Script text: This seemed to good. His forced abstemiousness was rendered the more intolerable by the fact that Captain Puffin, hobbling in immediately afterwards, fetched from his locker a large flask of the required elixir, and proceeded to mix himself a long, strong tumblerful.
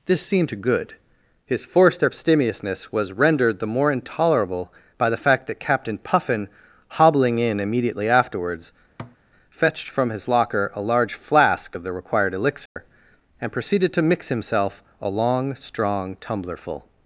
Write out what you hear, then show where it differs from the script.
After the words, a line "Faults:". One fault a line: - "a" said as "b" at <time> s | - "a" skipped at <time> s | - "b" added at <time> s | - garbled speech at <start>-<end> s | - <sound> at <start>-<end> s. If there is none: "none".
This seemed to good. His forced abstemiousness was rendered the more intolerable by the fact that Captain Puffin, hobbling in immediately afterwards, fetched from his locker a large flask of the required elixir, and proceeded to mix himself a long, strong tumblerful.
Faults:
- thud at 9.0-9.2 s
- dropout at 12.7-12.8 s